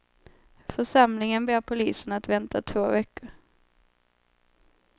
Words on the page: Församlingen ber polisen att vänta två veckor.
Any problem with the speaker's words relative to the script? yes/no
no